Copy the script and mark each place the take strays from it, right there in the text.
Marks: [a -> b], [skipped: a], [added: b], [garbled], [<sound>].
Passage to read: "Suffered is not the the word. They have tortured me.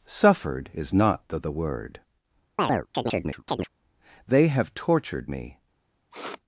"Suffered is not the the word. [chirp] They have tortured me. [sniff]